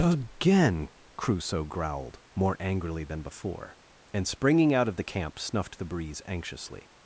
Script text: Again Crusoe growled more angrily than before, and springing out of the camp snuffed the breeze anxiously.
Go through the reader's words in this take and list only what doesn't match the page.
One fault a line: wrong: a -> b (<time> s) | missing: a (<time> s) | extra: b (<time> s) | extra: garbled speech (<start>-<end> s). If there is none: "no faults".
no faults